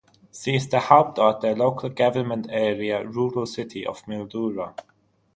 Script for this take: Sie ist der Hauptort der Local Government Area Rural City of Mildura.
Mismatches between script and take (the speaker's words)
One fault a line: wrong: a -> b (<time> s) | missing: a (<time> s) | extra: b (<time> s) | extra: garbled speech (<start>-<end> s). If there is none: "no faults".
no faults